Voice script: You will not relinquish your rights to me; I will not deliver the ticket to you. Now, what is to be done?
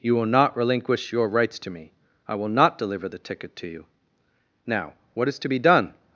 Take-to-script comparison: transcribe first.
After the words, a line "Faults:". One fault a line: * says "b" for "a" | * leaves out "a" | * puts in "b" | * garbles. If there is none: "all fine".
You will not relinquish your rights to me; I will not deliver the ticket to you. Now, what is to be done?
Faults:
all fine